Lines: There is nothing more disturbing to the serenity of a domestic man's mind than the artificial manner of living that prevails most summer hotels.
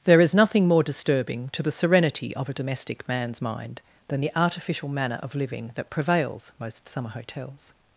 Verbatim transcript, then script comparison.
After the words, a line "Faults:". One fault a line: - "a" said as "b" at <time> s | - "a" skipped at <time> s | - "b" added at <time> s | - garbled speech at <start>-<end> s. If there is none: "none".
There is nothing more disturbing to the serenity of a domestic man's mind than the artificial manner of living that prevails most summer hotels.
Faults:
none